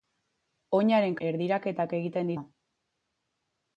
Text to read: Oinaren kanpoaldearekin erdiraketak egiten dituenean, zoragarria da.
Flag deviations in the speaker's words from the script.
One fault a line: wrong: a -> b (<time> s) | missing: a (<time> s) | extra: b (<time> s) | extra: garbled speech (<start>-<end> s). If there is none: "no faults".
missing: kanpoaldearekin (1.2 s)
missing: dituenean zoragarria (2.3 s)